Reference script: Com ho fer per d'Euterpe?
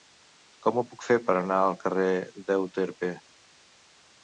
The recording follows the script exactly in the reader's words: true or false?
false